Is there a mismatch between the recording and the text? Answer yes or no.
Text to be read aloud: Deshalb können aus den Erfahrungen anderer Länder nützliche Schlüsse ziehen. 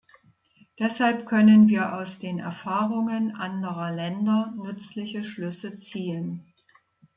yes